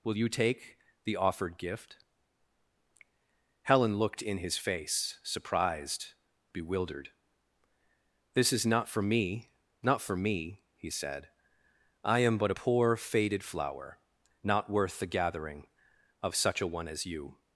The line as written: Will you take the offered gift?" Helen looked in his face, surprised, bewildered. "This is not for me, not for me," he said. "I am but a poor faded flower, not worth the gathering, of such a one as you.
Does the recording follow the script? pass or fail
pass